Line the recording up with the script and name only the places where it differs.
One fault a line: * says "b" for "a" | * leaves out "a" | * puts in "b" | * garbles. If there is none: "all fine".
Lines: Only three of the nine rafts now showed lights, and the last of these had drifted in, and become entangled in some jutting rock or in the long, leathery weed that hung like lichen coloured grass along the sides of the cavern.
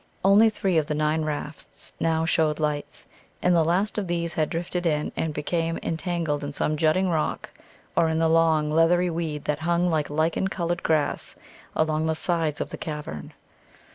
all fine